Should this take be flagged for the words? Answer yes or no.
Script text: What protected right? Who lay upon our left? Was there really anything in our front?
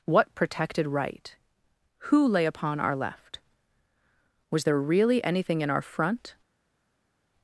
no